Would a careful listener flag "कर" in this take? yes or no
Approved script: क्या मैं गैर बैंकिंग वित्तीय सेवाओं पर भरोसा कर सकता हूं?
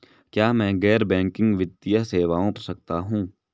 yes